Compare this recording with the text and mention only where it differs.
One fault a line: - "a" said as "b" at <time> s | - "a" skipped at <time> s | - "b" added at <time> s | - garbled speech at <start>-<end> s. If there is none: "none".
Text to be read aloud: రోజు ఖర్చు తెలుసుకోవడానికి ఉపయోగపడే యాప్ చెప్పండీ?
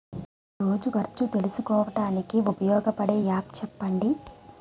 none